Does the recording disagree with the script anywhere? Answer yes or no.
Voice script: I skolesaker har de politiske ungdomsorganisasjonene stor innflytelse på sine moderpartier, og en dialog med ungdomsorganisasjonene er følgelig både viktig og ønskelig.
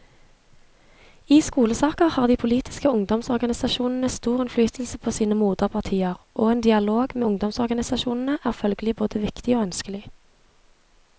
no